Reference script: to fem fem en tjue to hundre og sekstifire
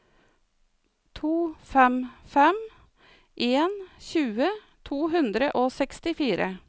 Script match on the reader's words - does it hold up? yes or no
yes